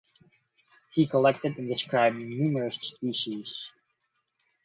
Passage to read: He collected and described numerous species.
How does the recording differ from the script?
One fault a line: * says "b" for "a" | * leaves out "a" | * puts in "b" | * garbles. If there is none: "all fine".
all fine